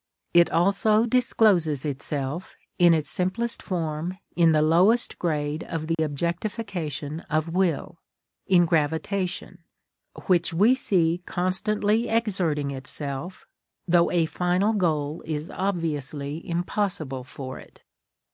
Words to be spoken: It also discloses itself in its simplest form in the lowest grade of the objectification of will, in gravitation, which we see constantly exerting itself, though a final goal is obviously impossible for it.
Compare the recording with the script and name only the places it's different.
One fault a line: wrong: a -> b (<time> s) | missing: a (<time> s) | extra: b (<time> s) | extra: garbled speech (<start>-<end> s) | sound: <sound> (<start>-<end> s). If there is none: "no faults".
sound: dropout (5.9-6.0 s)